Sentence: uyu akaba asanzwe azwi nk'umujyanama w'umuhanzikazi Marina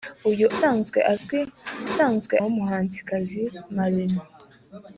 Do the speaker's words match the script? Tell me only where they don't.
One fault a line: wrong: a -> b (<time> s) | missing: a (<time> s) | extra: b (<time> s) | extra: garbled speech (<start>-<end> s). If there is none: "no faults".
missing: akaba (0.5 s)
wrong: nk'umujyanama -> asanzwe (1.9 s)